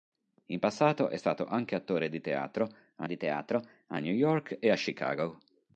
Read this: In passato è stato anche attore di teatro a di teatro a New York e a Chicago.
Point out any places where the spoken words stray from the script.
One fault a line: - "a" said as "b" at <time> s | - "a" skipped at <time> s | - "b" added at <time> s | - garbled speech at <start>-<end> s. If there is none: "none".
none